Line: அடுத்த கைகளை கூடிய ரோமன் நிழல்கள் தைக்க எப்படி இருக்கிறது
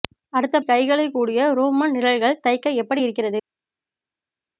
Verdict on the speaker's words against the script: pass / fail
pass